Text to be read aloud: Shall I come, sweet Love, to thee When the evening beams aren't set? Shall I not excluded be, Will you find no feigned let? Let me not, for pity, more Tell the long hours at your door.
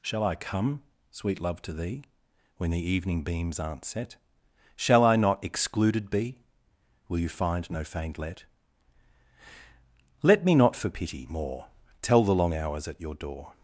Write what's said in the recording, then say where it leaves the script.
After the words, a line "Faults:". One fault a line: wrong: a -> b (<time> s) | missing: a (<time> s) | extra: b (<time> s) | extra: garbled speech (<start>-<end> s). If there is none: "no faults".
Shall I come, sweet Love, to thee When the evening beams aren't set? Shall I not excluded be, Will you find no feigned let? Let me not, for pity, more Tell the long hours at your door.
Faults:
no faults